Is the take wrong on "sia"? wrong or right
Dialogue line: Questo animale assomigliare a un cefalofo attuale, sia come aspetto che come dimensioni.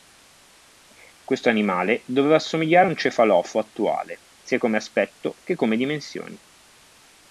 right